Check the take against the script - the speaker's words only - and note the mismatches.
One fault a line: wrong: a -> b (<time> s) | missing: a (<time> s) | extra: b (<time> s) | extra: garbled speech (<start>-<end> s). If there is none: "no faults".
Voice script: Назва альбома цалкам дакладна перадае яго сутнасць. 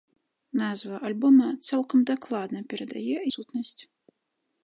missing: яго (3.2 s)